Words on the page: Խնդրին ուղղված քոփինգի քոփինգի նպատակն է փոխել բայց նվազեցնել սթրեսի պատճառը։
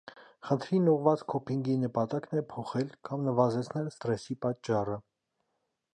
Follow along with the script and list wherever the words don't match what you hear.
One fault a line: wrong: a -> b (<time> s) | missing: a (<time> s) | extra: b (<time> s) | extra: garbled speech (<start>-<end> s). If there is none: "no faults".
missing: քոփինգի (1.8 s)
wrong: բայց -> կամ (3.1 s)